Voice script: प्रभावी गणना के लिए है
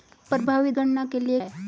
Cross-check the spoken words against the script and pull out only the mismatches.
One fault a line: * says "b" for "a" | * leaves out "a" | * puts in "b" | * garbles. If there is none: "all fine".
all fine